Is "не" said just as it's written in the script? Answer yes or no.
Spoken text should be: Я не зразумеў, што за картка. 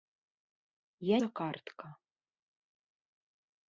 no